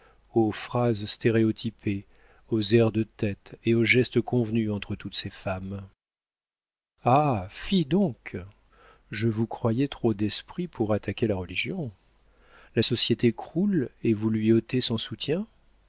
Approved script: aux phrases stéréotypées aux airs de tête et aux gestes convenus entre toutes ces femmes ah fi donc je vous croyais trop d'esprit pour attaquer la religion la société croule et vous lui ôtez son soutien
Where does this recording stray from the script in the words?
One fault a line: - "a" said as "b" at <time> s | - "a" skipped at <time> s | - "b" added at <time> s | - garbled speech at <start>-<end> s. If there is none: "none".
none